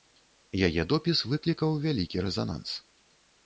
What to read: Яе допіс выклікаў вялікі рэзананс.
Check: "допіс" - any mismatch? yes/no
no